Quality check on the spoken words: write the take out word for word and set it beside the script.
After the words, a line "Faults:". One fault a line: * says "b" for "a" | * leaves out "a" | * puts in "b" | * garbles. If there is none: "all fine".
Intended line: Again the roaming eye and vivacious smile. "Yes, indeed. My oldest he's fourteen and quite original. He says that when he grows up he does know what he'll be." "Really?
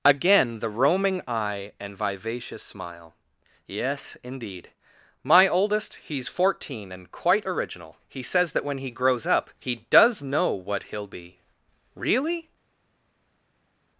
Again the roaming eye and vivacious smile. "Yes, indeed. My oldest he's fourteen and quite original. He says that when he grows up he does know what he'll be." "Really?
Faults:
all fine